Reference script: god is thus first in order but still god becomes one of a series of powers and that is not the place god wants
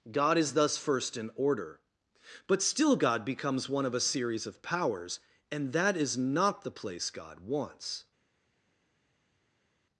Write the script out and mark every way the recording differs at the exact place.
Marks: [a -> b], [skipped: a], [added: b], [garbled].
god is thus first in order but still god becomes one of a series of powers and that is not the place god wants